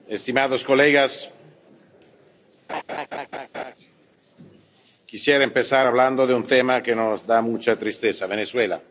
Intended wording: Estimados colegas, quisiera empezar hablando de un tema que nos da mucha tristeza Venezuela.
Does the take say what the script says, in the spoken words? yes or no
yes